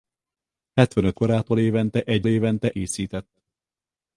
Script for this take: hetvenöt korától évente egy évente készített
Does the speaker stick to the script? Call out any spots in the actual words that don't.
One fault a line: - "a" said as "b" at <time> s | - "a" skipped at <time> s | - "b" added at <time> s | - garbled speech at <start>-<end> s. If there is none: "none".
none